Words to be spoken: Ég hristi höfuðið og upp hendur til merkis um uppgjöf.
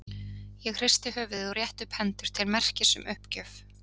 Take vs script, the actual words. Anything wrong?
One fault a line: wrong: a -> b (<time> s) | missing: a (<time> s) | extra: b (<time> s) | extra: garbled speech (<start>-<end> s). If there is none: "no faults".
extra: rétti (1.6 s)